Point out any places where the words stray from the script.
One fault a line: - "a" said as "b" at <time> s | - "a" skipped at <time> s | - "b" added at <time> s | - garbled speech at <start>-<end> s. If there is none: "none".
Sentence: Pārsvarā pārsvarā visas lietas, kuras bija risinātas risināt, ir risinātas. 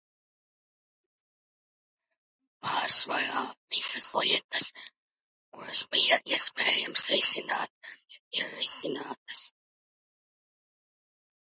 - "pārsvarā" skipped at 3.4 s
- "risinātas" said as "iespējams" at 6.3 s